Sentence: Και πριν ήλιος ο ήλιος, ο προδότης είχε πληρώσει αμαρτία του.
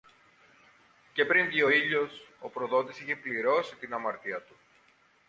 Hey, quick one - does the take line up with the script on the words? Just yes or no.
no